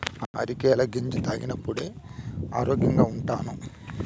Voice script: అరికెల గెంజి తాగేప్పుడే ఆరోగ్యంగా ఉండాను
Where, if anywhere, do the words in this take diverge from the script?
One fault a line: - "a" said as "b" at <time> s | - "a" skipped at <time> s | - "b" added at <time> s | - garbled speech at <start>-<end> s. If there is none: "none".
none